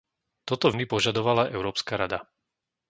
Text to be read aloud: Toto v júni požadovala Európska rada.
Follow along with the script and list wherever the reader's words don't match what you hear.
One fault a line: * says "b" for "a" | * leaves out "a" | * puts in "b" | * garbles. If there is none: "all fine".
* leaves out "v"